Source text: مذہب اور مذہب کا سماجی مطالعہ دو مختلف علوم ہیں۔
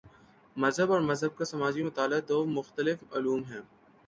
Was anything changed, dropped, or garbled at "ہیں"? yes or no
no